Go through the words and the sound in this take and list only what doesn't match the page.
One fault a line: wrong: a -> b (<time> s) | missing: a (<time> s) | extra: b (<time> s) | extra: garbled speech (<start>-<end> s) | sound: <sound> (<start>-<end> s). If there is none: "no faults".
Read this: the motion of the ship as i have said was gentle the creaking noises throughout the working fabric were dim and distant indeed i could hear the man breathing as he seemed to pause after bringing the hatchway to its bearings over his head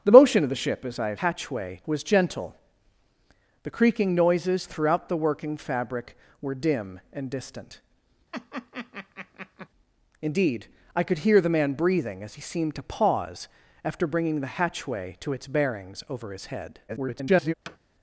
wrong: said -> hatchway (1.2 s)
sound: laugh (8.3-9.7 s)
extra: garbled speech (16.9-17.5 s)
sound: thud (17.7-17.8 s)